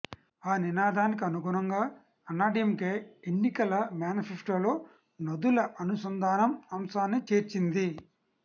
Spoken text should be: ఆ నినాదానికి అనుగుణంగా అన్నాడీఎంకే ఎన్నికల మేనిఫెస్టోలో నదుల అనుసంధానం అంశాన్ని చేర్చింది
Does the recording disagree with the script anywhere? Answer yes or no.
no